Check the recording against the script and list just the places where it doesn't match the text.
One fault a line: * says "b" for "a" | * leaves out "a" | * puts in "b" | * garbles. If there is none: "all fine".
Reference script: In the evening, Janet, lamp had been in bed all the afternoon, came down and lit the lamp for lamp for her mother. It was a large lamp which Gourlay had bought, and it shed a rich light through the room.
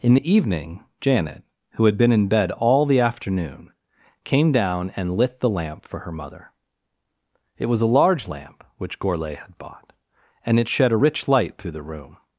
* says "who" for "lamp"
* leaves out "lamp for"